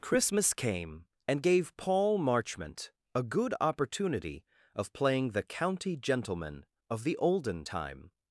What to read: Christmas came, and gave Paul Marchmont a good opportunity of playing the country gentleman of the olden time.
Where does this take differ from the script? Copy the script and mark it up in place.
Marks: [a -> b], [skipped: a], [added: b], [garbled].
Christmas came, and gave Paul Marchmont a good opportunity of playing the [country -> county] gentleman of the olden time.